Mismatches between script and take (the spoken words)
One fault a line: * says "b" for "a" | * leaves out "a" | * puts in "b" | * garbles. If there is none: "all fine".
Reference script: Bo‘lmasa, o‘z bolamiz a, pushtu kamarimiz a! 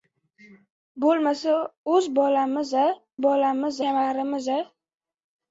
* says "bolamiz" for "pushtu"